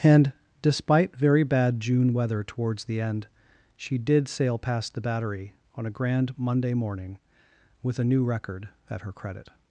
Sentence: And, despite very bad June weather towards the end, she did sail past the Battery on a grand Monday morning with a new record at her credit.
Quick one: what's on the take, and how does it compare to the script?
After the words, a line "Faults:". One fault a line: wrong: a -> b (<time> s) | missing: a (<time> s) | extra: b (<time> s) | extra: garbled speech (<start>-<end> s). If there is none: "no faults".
And, despite very bad June weather towards the end, she did sail past the Battery on a grand Monday morning with a new record at her credit.
Faults:
no faults